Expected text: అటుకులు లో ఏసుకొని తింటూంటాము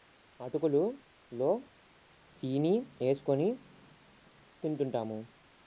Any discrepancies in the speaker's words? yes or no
yes